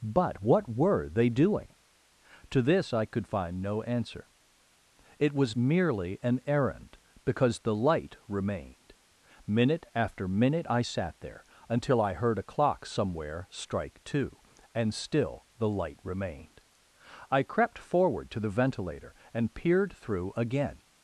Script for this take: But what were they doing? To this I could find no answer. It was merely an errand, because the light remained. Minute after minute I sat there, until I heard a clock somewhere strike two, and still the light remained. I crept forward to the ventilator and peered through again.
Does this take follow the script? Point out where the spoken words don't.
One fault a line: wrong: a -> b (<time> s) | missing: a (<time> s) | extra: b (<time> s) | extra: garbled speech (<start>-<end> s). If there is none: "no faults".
no faults